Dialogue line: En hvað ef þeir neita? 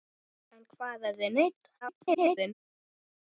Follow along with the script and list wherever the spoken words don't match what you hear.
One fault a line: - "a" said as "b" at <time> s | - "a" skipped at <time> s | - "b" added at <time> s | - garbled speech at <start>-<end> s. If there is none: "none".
- garbled speech at 1.8-2.5 s